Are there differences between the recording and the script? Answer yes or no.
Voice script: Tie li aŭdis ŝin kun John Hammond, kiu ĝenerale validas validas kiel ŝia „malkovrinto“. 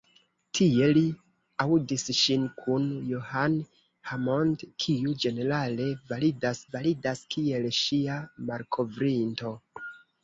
no